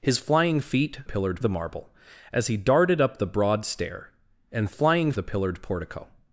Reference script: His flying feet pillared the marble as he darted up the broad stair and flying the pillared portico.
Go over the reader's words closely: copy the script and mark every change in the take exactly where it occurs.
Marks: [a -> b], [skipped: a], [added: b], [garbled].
His flying feet pillared the marble as he darted up the broad stair and flying the pillared portico.